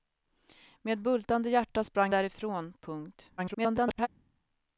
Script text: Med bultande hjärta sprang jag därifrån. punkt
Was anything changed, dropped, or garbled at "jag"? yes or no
yes